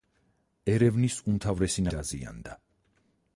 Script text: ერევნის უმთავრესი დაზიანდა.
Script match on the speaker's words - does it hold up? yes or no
yes